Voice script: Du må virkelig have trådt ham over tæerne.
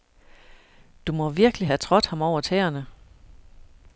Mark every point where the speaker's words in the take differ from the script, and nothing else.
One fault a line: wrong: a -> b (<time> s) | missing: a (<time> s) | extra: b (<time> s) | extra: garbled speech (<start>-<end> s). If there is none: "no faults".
no faults